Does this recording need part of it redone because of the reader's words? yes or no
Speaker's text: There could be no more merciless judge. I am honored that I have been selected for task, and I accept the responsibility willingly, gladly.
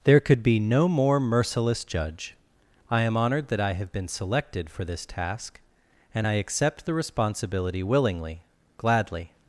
yes